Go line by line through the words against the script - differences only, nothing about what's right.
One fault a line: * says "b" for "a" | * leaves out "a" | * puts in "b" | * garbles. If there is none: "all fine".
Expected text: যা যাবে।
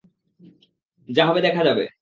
* puts in "হবে দেখা"